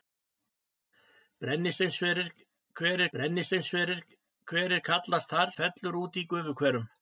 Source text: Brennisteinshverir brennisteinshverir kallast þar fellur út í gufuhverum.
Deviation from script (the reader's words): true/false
false